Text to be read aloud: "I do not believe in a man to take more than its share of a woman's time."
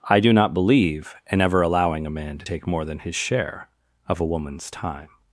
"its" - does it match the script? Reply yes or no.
no